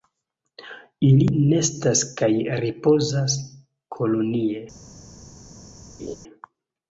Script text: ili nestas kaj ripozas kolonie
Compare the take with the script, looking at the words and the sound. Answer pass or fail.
fail